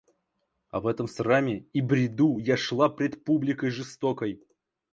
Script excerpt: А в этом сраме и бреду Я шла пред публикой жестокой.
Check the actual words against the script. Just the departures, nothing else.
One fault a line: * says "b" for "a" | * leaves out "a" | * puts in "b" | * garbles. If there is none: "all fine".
all fine